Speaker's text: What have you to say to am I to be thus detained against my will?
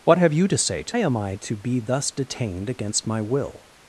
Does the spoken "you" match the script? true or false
true